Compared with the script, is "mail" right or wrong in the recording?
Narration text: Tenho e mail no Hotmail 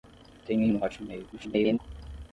wrong